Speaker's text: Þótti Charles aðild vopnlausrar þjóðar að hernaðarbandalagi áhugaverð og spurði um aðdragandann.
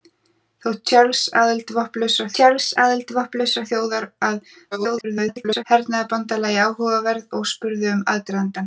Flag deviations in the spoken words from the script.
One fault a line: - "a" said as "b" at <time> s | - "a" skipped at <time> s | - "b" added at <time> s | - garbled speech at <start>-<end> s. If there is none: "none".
- "Charles aðild vopnlausrar" added at 2.4 s
- garbled speech at 4.7-5.6 s